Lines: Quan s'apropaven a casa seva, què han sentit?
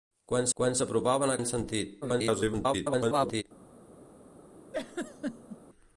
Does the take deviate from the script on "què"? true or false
true